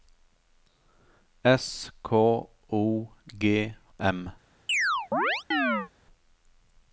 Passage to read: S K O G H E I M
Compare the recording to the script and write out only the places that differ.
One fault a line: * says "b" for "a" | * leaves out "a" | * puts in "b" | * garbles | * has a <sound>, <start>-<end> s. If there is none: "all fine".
* leaves out "H E I"
* has a chirp, 4.7-5.9 s